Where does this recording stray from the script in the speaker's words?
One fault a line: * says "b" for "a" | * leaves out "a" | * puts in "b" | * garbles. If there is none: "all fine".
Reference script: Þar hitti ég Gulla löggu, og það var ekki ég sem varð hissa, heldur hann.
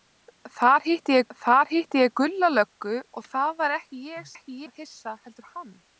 * puts in "þar hitti ég"
* says "ekki" for "sem"